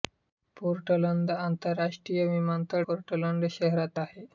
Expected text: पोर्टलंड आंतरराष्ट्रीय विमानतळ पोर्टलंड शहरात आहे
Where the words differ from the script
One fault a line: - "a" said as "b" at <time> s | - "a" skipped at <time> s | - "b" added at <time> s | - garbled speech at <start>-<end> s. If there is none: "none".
none